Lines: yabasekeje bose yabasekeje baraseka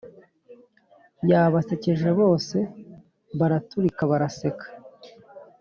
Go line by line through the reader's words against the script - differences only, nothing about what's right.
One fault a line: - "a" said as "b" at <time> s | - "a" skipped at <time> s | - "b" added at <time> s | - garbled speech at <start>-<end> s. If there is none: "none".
- "yabasekeje" said as "baraturika" at 3.4 s